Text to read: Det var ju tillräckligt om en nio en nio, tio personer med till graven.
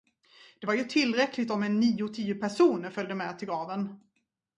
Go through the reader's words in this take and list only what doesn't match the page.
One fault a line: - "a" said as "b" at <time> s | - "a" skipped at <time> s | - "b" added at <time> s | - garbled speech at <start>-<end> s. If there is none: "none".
- "en nio" skipped at 2.1 s
- "följde" added at 2.9 s